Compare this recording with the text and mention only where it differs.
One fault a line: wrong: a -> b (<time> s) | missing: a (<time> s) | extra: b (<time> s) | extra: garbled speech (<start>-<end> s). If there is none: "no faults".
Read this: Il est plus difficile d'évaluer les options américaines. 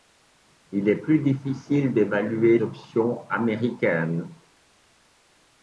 missing: les (2.6 s)